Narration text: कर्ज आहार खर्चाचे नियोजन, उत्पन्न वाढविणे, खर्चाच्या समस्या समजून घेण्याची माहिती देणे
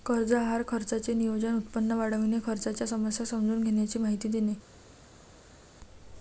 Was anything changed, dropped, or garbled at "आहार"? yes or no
no